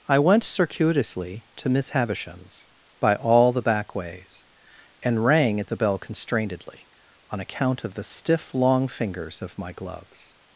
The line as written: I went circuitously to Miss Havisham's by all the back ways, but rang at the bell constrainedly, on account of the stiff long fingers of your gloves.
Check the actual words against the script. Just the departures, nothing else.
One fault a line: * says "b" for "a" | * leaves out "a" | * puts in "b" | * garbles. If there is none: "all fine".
* says "and" for "but"
* says "my" for "your"